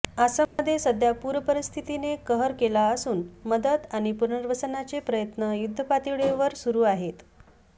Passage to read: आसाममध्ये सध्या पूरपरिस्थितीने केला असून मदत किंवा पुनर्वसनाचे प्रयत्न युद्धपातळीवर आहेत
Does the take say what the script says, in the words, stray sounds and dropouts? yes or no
no